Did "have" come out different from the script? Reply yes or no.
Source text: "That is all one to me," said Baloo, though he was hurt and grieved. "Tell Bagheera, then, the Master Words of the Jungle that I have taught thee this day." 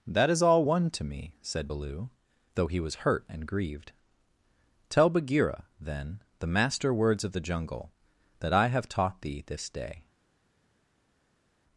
no